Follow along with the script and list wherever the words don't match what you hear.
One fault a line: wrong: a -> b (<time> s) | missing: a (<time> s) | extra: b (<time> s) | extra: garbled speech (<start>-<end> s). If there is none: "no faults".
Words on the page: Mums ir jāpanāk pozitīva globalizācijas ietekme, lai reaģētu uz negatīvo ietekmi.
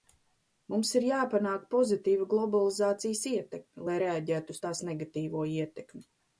extra: tās (4.7 s)